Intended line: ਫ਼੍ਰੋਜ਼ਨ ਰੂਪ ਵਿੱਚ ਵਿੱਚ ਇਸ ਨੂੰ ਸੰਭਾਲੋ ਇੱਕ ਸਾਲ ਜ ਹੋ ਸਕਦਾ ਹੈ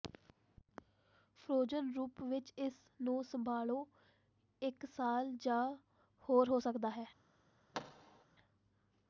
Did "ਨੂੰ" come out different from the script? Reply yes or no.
no